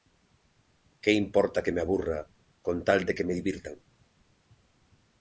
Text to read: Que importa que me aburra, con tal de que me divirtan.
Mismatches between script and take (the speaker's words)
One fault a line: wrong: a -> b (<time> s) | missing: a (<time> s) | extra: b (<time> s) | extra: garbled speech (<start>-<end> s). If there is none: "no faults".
no faults